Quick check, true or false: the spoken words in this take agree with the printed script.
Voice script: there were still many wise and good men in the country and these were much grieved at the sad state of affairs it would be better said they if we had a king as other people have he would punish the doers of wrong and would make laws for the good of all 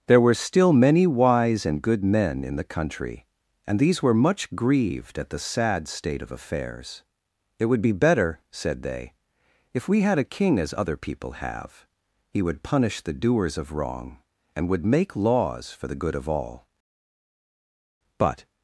false